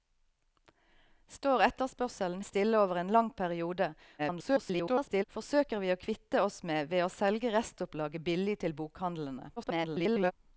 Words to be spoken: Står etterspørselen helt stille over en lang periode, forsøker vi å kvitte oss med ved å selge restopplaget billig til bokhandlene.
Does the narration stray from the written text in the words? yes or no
yes